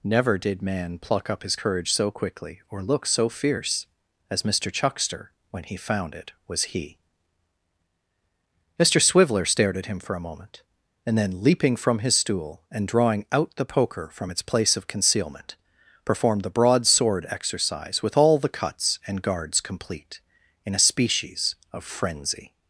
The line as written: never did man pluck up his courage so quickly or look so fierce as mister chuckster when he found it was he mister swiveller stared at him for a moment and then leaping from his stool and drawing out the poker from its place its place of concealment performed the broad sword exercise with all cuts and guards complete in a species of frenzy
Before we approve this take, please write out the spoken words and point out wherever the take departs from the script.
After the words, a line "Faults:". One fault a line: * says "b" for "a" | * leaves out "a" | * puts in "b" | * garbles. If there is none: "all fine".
never did man pluck up his courage so quickly or look so fierce as mister chuckster when he found it was he mister swiveller stared at him for a moment and then leaping from his stool and drawing out the poker from its place of concealment performed the broad sword exercise with all the cuts and guards complete in a species of frenzy
Faults:
* leaves out "its place"
* puts in "the"